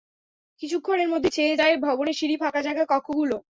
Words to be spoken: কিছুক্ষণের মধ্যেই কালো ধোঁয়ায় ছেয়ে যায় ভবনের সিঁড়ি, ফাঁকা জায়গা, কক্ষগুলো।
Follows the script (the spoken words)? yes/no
no